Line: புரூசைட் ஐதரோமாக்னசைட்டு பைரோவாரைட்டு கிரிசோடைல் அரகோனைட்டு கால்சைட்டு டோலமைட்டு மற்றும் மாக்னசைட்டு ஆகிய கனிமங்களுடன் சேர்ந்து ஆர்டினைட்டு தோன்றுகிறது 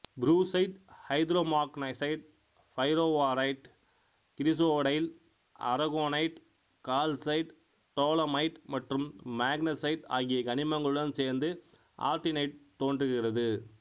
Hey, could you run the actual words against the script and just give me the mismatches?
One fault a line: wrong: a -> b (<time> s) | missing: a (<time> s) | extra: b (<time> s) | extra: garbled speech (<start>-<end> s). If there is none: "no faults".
no faults